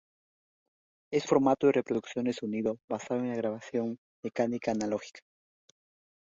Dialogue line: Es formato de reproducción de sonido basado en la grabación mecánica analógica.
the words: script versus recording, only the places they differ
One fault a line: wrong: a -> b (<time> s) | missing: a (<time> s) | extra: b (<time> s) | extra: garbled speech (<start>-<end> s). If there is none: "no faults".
no faults